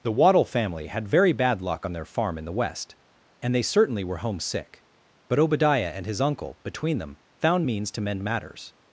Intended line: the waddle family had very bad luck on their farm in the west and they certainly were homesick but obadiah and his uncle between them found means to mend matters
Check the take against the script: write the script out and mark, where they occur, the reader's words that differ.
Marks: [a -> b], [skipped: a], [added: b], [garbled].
the waddle family had very bad luck on their farm in the west and they certainly were homesick but obadiah and his uncle between them found means to mend matters